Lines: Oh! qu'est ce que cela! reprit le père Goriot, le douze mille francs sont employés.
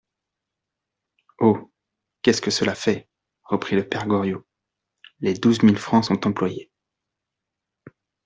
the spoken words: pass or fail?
fail